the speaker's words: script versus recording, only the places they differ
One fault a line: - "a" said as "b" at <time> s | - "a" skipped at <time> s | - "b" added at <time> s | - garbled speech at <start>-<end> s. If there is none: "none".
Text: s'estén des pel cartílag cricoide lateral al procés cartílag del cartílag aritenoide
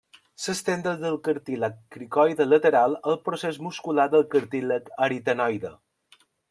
- "pel" said as "del" at 1.0 s
- "cartílag" said as "muscular" at 3.7 s